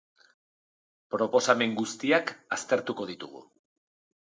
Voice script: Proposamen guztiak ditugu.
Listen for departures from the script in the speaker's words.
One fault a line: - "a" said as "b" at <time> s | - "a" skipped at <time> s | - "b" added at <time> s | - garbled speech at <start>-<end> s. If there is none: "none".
- "aztertuko" added at 2.6 s